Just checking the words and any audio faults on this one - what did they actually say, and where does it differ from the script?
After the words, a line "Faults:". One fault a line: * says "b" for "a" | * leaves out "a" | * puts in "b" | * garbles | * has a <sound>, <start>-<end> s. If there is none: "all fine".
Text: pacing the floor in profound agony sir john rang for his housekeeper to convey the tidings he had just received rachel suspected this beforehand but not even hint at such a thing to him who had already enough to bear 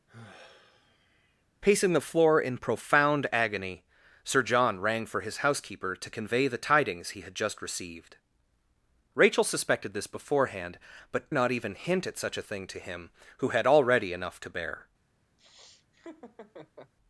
pacing the floor in profound agony sir john rang for his housekeeper to convey the tidings he had just received rachel suspected this beforehand but not even hint at such a thing to him who had already enough to bear
Faults:
* has a sigh, 0.1-1.4 s
* has a laugh, 15.4-16.9 s